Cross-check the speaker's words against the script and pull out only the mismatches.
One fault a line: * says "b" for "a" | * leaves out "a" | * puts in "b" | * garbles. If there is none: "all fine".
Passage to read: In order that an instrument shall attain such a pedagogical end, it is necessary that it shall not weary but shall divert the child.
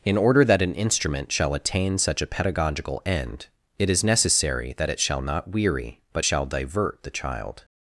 all fine